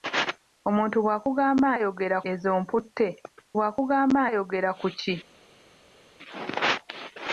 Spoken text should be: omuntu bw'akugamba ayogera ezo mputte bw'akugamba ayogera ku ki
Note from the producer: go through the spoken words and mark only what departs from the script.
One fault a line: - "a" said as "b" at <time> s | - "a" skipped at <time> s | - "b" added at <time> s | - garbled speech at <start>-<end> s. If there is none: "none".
none